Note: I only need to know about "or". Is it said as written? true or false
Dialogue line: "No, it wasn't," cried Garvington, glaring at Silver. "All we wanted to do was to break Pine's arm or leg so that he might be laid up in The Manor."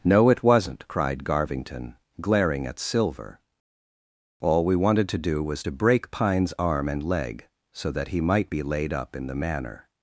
false